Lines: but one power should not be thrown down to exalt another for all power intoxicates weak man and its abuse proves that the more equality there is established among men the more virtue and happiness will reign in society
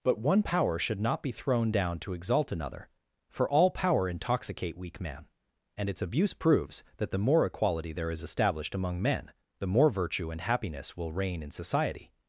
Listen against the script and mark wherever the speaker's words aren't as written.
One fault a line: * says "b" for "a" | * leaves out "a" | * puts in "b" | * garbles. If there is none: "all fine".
* says "intoxicate" for "intoxicates"